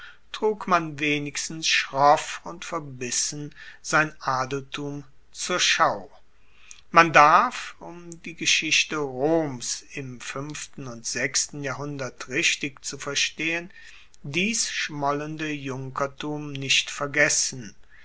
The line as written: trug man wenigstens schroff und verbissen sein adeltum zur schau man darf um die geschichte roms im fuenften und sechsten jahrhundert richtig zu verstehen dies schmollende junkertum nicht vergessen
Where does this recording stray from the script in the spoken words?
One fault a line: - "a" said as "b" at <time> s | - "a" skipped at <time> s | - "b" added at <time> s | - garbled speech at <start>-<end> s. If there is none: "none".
none